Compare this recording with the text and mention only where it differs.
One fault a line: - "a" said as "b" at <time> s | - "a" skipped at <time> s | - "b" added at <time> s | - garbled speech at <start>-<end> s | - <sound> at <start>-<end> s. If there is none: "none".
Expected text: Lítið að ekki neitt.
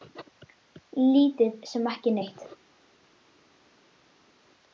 - "að" said as "sem" at 1.7 s